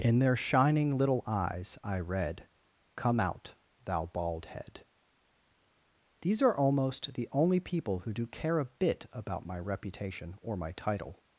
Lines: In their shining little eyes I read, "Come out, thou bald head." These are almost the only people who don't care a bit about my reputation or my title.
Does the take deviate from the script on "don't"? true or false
true